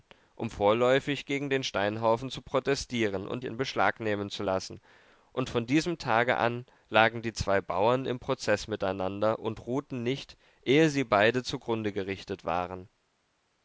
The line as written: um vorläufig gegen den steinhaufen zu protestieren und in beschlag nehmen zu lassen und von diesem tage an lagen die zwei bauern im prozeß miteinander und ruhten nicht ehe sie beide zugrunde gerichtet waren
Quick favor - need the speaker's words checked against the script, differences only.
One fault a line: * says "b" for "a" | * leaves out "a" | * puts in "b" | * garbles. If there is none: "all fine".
all fine